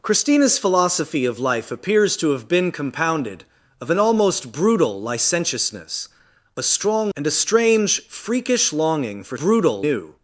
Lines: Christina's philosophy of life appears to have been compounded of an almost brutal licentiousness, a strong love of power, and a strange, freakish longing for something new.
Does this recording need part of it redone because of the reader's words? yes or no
yes